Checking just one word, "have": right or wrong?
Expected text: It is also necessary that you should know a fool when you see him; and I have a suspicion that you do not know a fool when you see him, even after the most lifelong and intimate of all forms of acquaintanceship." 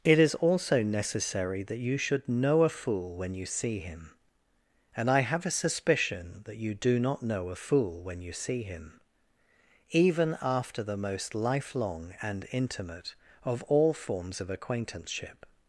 right